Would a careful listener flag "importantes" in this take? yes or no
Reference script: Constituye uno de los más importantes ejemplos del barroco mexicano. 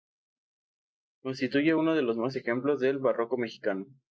yes